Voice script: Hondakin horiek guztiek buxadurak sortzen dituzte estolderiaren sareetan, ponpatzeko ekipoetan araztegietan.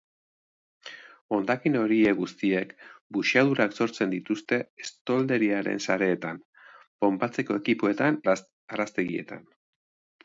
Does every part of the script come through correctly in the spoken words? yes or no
yes